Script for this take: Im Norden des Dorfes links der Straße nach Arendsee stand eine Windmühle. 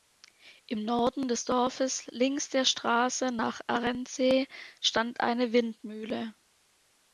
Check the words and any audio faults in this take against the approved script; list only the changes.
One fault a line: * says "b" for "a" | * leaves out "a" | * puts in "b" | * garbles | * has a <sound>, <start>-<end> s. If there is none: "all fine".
all fine